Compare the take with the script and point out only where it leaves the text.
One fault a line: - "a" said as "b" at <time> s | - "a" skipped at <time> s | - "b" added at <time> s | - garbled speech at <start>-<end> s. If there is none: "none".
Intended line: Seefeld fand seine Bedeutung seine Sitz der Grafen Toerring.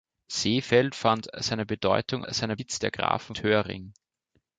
none